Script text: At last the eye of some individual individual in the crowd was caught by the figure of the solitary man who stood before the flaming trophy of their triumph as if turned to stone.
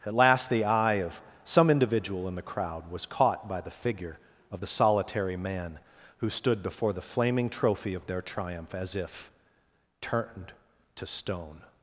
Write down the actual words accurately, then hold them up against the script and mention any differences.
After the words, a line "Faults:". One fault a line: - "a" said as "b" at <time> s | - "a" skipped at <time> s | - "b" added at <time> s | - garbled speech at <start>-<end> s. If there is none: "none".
At last the eye of some individual in the crowd was caught by the figure of the solitary man who stood before the flaming trophy of their triumph as if turned to stone.
Faults:
- "individual" skipped at 2.3 s